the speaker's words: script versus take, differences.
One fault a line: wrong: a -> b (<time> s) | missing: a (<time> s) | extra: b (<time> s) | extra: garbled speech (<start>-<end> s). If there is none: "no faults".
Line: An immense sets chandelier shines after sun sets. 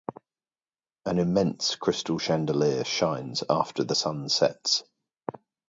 wrong: sets -> crystal (1.8 s)
extra: the (3.8 s)